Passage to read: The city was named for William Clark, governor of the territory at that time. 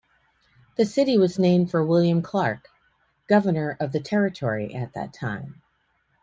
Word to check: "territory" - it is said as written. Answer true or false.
true